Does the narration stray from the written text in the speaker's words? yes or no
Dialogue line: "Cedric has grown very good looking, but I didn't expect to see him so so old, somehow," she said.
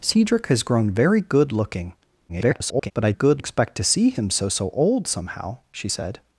yes